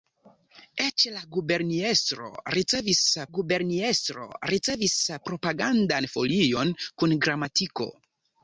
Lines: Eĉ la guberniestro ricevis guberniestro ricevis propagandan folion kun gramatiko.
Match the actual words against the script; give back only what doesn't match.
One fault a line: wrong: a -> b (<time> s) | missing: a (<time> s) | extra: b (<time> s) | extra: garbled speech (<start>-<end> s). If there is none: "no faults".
no faults